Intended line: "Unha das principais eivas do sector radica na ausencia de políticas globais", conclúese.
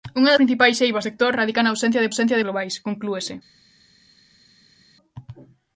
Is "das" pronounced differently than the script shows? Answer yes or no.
yes